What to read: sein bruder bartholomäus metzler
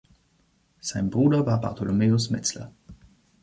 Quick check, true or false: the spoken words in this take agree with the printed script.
false